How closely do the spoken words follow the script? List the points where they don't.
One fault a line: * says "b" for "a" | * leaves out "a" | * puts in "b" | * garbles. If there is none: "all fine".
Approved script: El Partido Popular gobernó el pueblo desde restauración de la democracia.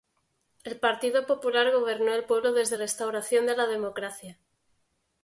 all fine